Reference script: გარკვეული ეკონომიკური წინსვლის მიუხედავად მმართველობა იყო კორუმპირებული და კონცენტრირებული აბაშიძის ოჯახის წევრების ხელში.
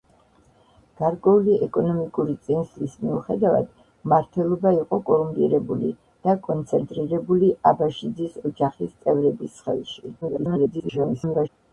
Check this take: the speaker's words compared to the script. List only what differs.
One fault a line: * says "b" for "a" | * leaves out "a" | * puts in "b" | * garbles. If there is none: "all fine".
* garbles